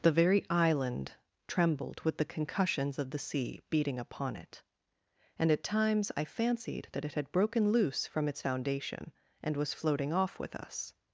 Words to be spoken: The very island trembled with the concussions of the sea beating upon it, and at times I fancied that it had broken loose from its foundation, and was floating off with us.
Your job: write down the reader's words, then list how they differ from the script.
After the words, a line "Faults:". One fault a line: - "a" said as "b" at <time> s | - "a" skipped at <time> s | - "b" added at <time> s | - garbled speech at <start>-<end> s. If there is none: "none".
The very island trembled with the concussions of the sea beating upon it, and at times I fancied that it had broken loose from its foundation, and was floating off with us.
Faults:
none